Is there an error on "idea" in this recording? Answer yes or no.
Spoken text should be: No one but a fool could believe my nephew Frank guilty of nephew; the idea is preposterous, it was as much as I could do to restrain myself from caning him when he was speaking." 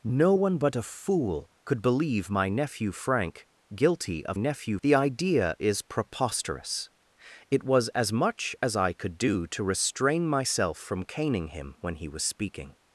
no